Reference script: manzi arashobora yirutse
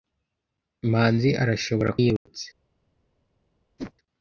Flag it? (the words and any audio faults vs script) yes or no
yes